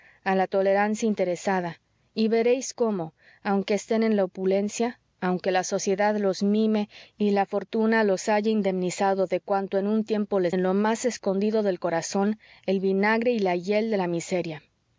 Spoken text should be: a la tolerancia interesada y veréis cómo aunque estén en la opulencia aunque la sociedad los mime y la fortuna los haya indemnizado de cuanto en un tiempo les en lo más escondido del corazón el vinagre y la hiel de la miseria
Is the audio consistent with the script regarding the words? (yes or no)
yes